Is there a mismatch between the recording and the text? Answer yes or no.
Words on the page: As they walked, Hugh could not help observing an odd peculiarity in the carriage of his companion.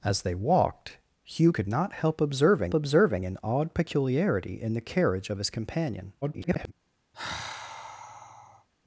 yes